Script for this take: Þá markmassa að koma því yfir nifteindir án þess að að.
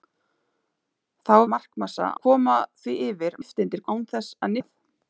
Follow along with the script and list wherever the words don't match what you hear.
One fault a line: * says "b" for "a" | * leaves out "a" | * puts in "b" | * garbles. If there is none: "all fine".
all fine